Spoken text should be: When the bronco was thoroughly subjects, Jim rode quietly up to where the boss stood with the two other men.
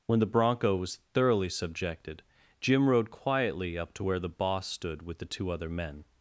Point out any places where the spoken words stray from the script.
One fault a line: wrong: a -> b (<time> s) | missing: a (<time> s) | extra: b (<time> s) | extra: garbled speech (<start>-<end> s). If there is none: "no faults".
wrong: subjects -> subjected (1.5 s)